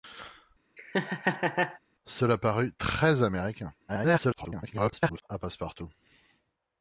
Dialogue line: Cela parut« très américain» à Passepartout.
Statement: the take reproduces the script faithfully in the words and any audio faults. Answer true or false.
false